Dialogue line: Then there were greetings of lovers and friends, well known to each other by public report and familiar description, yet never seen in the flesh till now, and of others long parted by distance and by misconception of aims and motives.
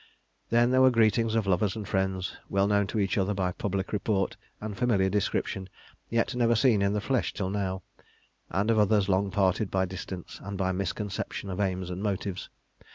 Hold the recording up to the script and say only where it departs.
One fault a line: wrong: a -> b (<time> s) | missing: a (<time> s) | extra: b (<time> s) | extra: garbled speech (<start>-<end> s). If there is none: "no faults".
no faults